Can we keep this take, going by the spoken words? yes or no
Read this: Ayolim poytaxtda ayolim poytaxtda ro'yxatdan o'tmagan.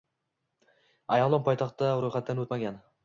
no